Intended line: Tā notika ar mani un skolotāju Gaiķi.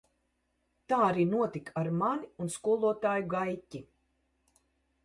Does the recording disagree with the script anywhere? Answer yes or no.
yes